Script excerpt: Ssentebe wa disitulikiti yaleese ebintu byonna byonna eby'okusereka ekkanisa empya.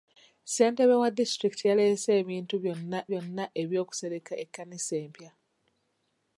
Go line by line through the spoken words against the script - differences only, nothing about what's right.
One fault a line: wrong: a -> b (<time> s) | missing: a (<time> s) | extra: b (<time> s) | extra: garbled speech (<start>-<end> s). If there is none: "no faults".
no faults